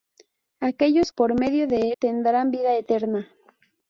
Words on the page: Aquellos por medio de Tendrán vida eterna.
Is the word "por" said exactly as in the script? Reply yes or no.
yes